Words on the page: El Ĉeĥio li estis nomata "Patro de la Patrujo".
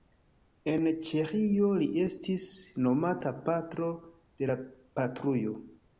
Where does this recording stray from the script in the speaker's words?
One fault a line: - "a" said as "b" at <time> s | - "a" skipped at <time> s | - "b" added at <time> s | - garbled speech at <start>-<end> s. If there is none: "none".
- "El" said as "En" at 0.7 s